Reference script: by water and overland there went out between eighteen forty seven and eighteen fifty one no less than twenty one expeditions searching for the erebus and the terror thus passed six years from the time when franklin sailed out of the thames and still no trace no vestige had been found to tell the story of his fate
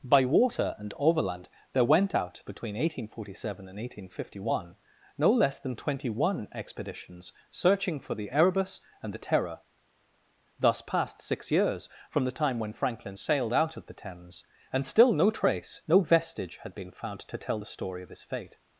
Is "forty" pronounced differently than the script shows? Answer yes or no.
no